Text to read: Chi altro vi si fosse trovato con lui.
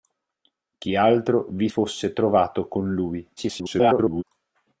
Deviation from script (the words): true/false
true